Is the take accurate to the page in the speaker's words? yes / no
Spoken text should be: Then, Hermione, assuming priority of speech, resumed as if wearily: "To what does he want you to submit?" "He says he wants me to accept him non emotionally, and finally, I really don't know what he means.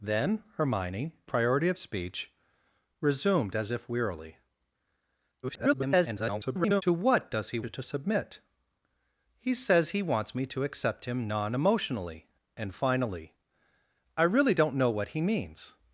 no